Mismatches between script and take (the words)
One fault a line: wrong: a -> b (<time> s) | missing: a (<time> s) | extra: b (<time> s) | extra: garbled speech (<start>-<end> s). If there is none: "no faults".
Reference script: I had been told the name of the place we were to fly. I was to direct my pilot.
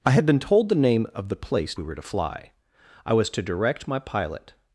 no faults